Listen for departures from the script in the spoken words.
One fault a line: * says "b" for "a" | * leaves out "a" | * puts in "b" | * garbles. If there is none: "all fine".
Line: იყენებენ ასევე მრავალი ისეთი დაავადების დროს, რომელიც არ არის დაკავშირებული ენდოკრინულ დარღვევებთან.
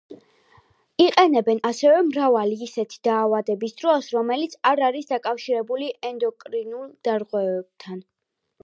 all fine